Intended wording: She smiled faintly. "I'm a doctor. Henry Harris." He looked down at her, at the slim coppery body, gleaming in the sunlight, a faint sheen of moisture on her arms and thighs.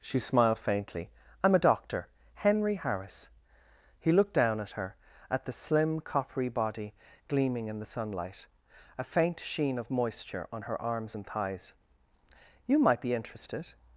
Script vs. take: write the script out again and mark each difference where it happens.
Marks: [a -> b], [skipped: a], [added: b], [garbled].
She smiled faintly. "I'm a doctor. Henry Harris." He looked down at her, at the slim coppery body, gleaming in the sunlight, a faint sheen of moisture on her arms and thighs. [added: You might be interested]